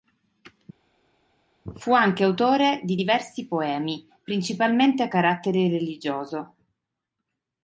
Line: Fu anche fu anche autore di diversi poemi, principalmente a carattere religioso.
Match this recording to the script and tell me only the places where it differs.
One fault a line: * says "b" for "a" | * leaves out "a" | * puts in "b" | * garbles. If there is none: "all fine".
* leaves out "fu anche"